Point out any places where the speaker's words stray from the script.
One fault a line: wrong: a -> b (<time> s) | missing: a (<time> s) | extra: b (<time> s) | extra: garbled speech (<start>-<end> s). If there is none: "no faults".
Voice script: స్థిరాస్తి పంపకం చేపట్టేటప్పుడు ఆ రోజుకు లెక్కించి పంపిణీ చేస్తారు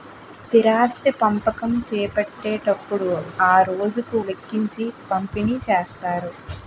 no faults